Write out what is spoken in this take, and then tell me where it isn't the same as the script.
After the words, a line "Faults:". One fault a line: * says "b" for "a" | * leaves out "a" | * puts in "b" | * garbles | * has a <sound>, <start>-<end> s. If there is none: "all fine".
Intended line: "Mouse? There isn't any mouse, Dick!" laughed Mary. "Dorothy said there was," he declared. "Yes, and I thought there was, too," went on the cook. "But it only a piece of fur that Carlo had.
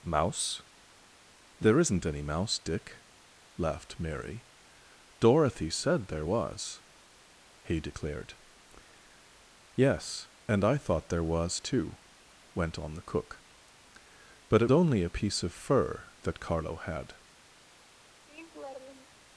"Mouse? There isn't any mouse, Dick!" laughed Mary. "Dorothy said there was," he declared. "Yes, and I thought there was, too," went on the cook. "But it only a piece of fur that Carlo had.
Faults:
* has a laugh, 18.3-19.2 s